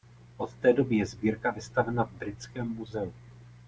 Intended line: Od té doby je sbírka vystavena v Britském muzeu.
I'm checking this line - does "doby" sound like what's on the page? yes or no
yes